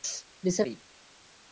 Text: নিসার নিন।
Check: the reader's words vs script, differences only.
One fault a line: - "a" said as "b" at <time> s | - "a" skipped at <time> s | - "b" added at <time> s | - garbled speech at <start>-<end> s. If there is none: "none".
none